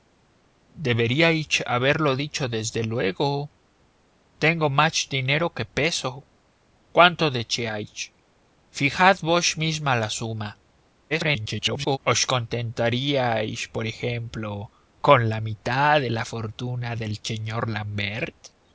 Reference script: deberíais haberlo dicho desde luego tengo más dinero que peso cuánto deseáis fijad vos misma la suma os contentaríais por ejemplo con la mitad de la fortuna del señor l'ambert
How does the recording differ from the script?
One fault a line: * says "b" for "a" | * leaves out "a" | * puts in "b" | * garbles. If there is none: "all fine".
* garbles